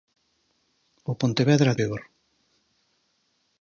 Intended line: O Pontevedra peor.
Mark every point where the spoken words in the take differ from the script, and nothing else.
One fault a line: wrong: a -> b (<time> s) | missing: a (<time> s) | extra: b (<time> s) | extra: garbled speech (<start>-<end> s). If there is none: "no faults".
no faults